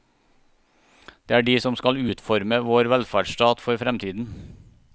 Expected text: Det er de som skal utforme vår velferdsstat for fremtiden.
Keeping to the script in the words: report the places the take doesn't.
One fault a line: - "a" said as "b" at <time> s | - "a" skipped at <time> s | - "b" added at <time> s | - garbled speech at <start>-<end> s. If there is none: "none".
none